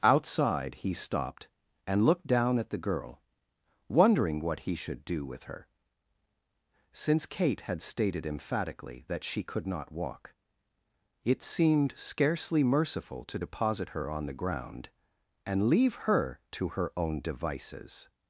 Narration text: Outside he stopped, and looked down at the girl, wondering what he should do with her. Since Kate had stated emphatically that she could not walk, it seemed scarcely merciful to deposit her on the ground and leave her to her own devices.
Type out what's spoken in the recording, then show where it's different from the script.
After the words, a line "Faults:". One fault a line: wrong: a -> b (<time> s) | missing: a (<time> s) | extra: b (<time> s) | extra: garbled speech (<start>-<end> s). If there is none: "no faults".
Outside he stopped, and looked down at the girl, wondering what he should do with her. Since Kate had stated emphatically that she could not walk, it seemed scarcely merciful to deposit her on the ground and leave her to her own devices.
Faults:
no faults